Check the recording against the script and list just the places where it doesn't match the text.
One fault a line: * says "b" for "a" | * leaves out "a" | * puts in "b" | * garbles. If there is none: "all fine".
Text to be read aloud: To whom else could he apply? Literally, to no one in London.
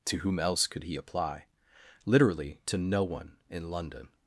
all fine